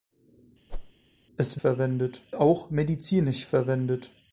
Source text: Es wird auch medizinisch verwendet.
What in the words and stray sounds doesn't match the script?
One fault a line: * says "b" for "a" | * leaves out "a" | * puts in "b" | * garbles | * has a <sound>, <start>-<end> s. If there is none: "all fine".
* has a whoosh, 0.7-0.9 s
* says "verwendet" for "wird"